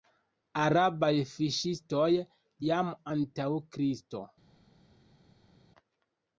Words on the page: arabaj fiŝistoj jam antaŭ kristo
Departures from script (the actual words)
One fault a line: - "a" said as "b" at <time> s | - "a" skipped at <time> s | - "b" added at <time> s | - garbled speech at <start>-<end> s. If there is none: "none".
none